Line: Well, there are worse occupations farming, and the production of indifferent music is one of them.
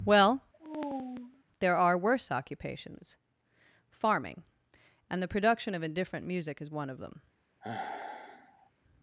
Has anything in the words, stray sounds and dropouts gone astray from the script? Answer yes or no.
yes